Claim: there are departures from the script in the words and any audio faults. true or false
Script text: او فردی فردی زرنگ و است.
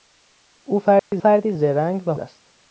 true